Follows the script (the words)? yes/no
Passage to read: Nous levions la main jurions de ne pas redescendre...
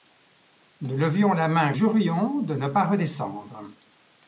yes